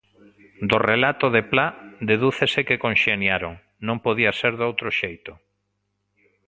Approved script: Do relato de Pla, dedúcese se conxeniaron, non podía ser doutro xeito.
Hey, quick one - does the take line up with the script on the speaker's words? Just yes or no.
no